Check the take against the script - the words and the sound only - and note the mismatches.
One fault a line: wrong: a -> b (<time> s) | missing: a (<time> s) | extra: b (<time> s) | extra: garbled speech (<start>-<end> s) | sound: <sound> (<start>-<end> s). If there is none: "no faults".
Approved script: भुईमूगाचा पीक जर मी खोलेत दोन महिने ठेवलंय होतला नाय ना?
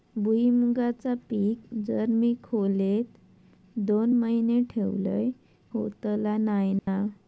sound: dropout (6.8-6.9 s)